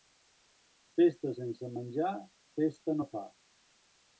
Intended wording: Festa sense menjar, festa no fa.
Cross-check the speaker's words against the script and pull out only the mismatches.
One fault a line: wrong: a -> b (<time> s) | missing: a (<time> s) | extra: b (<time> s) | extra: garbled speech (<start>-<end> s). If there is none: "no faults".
no faults